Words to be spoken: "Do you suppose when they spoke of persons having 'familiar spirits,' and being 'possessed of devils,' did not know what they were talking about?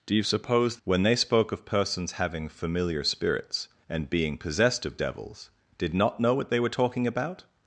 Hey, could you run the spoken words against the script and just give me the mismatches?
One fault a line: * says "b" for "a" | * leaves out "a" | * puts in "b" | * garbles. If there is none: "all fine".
all fine